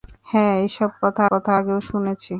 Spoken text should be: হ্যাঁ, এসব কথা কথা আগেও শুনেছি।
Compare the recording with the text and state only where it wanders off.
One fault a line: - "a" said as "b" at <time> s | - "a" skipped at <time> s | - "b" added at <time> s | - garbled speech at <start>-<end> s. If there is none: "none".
none